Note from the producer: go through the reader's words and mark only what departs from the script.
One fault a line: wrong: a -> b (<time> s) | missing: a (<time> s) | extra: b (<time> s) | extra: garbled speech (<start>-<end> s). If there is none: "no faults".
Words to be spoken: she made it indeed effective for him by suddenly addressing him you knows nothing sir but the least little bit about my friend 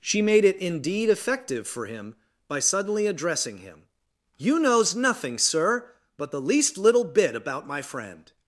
no faults